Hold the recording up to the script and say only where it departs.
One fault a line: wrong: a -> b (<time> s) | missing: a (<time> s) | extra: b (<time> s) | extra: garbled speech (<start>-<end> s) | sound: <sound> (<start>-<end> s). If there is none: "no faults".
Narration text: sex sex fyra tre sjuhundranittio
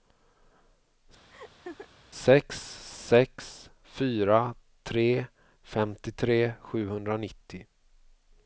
sound: laugh (1.3-1.9 s)
extra: femtiotre (5.8 s)